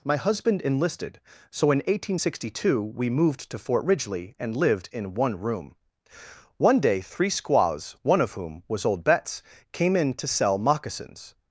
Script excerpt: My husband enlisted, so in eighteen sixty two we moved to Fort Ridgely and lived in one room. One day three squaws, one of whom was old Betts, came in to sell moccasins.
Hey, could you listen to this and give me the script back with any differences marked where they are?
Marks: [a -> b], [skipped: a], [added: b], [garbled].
My husband enlisted, so in eighteen sixty two we moved to Fort Ridgely and lived in one room. One day three squaws, one of whom was old Betts, came in to sell moccasins.